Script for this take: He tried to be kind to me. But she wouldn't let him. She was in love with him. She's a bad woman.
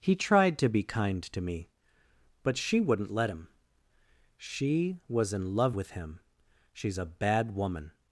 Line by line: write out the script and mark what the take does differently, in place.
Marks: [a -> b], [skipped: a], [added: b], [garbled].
He tried to be kind to me. But she wouldn't let him. She was in love with him. She's a bad woman.